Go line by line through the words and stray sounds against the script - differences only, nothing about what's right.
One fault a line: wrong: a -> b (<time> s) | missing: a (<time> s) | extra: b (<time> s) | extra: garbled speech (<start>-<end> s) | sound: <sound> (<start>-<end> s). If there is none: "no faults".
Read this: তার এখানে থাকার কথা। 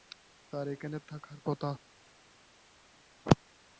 no faults